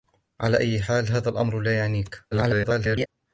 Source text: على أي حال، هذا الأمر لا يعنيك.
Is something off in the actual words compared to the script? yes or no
yes